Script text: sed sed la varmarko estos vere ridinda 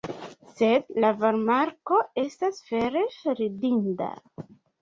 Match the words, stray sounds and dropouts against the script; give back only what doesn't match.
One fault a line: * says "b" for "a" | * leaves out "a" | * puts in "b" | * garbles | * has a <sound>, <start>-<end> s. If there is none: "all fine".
* leaves out "sed"
* says "estas" for "estos"